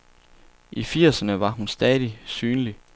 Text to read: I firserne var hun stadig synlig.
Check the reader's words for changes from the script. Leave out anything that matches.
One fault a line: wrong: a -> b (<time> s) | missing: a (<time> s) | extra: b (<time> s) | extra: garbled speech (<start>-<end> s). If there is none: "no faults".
no faults